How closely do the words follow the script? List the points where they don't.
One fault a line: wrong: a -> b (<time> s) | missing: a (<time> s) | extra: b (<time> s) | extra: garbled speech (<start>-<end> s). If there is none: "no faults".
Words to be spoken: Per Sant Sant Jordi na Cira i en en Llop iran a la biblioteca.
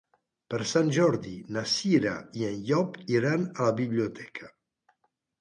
missing: Sant (0.9 s)
missing: en (2.6 s)